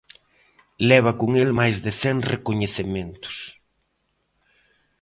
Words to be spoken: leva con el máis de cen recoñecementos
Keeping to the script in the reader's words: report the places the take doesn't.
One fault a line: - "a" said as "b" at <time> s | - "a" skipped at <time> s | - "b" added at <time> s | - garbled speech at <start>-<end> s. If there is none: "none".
none